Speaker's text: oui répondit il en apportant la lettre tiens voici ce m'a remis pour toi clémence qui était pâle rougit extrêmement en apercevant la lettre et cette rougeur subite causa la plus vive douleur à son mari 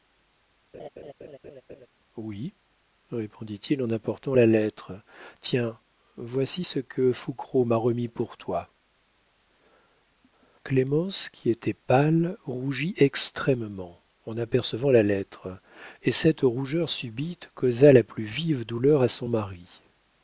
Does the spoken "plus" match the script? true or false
true